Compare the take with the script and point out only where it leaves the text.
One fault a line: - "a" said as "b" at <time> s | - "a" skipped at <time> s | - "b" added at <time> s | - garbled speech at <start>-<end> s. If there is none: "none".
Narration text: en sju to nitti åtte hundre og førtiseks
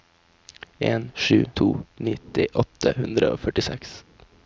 none